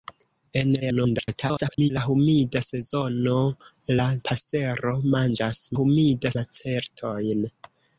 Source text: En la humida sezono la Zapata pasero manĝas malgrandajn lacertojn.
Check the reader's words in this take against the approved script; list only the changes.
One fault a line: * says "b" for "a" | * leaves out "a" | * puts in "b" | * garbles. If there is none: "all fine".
* garbles
* leaves out "Zapata"
* says "humida" for "malgrandajn"